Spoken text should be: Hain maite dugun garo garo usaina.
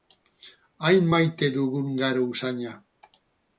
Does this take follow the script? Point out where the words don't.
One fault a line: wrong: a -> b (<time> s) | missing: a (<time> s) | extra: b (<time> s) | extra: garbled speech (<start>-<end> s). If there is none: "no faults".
missing: garo (2.2 s)